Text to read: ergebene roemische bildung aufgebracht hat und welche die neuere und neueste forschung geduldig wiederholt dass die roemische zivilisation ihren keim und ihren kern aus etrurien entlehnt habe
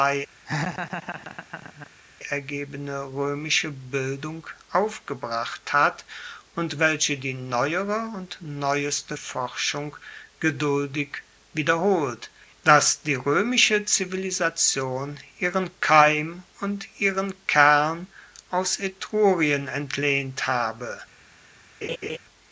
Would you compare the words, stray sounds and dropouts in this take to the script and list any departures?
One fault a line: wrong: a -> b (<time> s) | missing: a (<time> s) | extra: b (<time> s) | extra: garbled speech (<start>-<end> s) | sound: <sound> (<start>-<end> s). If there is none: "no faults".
sound: laugh (0.5-1.9 s)
sound: laugh (21.8-22.2 s)